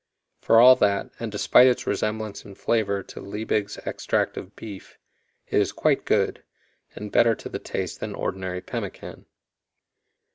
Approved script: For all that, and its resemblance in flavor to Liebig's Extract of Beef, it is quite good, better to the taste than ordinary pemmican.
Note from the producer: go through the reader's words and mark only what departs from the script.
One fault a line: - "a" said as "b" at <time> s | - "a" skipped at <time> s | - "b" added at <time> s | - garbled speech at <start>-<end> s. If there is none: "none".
- "despite" added at 1.3 s
- "and" added at 7.0 s